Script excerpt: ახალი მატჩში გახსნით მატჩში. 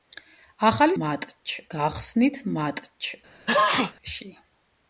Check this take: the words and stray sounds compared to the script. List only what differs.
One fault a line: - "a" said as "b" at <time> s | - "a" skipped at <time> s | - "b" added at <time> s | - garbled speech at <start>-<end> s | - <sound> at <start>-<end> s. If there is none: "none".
- sneeze at 3.5-3.9 s